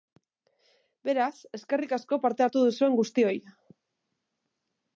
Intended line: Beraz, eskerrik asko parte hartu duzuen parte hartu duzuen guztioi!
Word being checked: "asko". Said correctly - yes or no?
yes